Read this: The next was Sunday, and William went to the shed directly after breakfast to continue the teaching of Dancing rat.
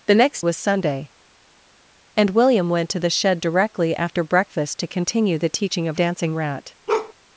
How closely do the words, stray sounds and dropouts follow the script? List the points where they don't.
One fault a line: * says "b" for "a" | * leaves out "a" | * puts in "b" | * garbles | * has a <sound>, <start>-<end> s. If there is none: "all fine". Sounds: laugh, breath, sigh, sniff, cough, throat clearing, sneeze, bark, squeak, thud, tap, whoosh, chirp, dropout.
* has a bark, 6.9-7.1 s